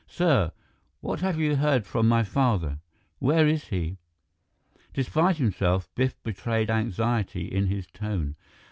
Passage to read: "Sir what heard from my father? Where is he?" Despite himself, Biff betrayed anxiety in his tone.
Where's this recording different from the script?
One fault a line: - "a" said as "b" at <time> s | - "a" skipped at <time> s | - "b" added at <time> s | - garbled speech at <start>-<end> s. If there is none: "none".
- "have you" added at 1.2 s